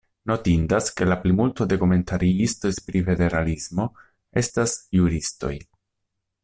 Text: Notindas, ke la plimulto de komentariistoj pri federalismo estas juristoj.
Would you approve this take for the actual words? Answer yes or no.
yes